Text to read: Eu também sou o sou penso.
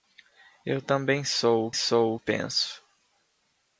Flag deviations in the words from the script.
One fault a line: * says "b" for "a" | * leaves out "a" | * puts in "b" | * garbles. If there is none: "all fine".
all fine